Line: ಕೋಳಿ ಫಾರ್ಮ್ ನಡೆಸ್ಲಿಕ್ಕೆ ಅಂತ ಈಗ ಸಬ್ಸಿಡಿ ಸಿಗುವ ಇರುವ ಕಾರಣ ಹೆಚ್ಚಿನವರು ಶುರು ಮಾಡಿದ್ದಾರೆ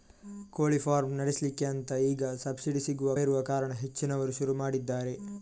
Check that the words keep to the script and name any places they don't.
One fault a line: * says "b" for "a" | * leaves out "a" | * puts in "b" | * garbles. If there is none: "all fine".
all fine